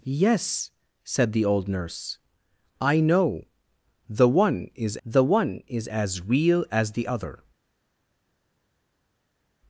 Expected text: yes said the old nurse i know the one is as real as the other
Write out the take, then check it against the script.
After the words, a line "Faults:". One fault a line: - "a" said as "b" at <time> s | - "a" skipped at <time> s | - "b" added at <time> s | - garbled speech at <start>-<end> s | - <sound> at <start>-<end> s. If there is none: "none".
yes said the old nurse i know the one is the one is as real as the other
Faults:
- "the one is" added at 5.1 s